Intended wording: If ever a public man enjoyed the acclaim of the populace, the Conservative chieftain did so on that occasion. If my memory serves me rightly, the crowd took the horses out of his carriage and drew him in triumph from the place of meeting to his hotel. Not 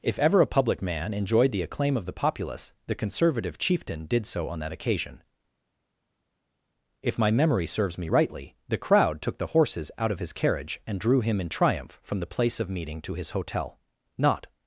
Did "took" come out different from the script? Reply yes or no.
no